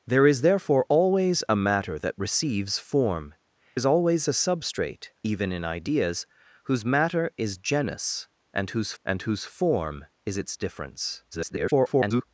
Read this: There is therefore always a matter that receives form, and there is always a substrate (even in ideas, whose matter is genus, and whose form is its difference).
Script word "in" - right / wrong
right